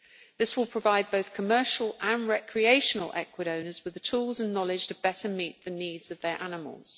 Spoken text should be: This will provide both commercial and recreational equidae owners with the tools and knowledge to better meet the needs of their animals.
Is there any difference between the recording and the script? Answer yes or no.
no